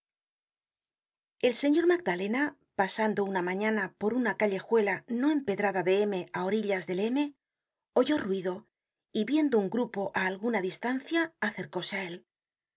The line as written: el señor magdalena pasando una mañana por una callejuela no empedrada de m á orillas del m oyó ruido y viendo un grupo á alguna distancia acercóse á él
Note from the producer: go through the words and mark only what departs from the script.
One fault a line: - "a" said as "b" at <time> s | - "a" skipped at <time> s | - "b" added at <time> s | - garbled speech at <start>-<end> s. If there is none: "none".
none